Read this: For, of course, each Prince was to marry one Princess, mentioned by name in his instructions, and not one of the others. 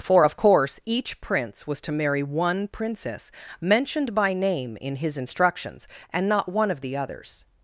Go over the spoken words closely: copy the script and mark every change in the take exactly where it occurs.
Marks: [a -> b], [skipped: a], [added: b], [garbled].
For, of course, each Prince was to marry one Princess, mentioned by name in his instructions, and not one of the others.